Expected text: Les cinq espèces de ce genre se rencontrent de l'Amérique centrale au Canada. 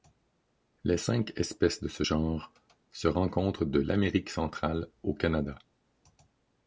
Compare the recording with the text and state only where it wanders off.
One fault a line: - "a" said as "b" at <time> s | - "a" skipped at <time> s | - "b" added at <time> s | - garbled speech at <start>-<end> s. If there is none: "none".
none